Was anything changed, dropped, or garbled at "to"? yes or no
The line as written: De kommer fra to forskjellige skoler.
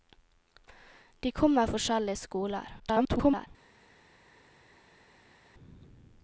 yes